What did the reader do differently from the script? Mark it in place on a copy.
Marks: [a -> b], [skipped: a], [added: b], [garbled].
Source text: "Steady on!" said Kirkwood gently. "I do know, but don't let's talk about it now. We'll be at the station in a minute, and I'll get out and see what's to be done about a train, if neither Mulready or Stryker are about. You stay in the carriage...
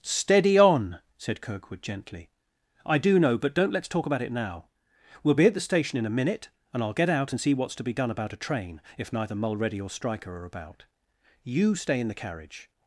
"Steady on!" said Kirkwood gently. "I do know, but don't let's talk about it now. We'll be at the station in a minute, and I'll get out and see what's to be done about a train, if neither Mulready or Stryker are about. You stay in the carriage...